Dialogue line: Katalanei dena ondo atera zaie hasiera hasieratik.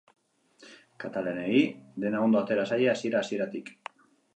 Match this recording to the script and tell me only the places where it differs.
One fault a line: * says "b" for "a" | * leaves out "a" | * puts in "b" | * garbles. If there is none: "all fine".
all fine